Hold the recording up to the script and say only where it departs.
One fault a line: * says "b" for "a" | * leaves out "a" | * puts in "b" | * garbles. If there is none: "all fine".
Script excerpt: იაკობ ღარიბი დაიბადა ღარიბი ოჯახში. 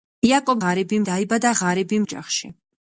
all fine